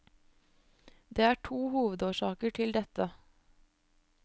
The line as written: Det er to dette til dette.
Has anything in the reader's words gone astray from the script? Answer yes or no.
yes